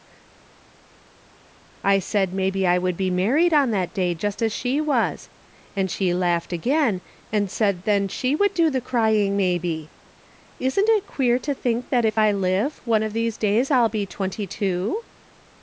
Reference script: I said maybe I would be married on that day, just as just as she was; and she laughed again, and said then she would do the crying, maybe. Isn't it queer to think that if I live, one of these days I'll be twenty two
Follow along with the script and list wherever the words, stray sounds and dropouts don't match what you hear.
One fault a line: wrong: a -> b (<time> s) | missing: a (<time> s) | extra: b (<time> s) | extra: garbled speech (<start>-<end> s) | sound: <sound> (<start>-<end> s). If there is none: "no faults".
missing: just as (4.5 s)